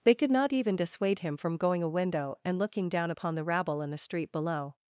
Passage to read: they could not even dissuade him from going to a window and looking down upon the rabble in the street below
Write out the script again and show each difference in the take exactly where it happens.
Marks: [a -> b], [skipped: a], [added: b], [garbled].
they could not even dissuade him from going [skipped: to] a window and looking down upon the rabble in the street below